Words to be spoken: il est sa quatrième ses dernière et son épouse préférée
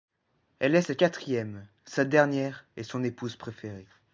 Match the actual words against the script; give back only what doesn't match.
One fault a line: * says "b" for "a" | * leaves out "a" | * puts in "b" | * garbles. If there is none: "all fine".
* says "elle" for "il"
* says "sa" for "ses"